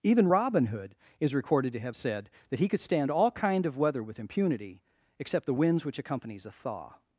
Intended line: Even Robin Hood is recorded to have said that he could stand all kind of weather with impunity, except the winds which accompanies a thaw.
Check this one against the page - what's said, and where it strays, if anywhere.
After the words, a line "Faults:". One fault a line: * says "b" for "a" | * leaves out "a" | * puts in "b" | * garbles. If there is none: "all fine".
Even Robin Hood is recorded to have said that he could stand all kind of weather with impunity, except the winds which accompanies a thaw.
Faults:
all fine